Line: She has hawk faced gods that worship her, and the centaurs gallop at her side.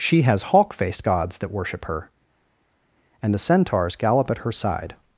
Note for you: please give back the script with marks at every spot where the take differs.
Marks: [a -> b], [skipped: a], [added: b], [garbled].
She has hawk faced gods that worship her, and the centaurs gallop at her side.